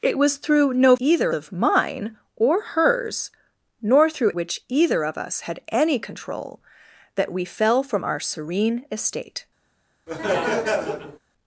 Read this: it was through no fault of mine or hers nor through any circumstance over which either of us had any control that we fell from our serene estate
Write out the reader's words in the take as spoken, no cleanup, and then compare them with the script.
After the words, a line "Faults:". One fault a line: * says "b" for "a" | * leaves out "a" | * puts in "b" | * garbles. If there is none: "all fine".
it was through no either of mine or hers nor through which either of us had any control that we fell from our serene estate
Faults:
* says "either" for "fault"
* leaves out "any circumstance over"